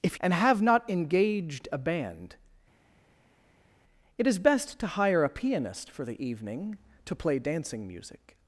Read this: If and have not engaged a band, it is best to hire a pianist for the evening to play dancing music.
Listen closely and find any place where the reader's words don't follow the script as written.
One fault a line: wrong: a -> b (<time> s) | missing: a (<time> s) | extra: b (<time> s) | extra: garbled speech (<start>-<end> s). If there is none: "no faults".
no faults